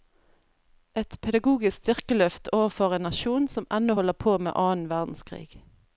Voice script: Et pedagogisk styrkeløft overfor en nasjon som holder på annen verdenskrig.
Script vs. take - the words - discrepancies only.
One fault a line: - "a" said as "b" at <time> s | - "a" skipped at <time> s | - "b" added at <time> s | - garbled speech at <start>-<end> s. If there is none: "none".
- "ennå" added at 3.8 s
- "med" added at 4.4 s